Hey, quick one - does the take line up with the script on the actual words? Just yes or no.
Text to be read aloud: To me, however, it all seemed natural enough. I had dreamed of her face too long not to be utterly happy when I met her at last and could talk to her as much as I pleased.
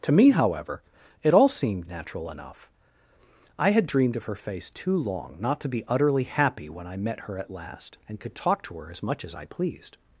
yes